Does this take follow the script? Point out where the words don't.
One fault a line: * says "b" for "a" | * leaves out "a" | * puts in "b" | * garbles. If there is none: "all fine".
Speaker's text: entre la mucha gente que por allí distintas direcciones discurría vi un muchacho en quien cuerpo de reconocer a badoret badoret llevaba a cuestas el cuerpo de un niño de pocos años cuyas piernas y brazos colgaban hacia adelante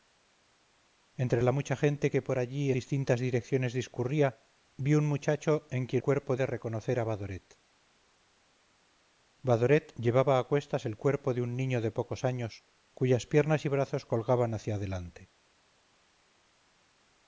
all fine